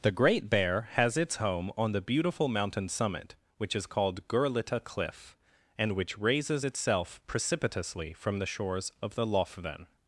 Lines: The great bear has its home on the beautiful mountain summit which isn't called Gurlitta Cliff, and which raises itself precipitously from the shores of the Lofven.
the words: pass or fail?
fail